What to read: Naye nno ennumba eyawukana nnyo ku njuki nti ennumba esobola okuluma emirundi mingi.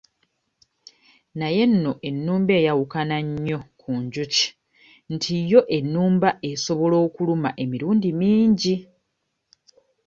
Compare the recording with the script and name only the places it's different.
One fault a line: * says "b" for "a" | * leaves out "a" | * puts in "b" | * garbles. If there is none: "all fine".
* puts in "yo"